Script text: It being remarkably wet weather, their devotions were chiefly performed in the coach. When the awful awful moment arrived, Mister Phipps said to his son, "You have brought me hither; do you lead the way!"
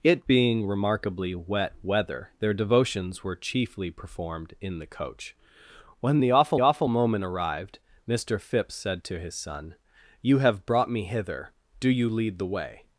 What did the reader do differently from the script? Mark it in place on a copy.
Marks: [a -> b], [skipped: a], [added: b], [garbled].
It being remarkably wet weather, their devotions were chiefly performed in the coach. When the awful awful moment arrived, Mister Phipps said to his son, "You have brought me hither; do you lead the way!"